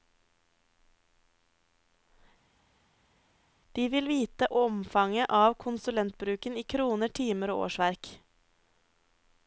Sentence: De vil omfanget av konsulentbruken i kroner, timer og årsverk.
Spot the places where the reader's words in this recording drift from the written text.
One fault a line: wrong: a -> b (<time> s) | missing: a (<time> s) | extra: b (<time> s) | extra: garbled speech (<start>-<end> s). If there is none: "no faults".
extra: vite (4.1 s)